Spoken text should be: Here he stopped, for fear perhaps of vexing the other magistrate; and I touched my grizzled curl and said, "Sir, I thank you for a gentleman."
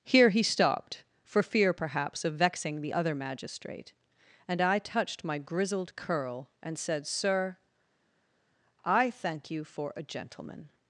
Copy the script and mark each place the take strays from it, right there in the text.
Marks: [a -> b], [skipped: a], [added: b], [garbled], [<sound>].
Here he stopped, for fear perhaps of vexing the other magistrate; and I touched my grizzled curl and said, "Sir, I thank you for a gentleman."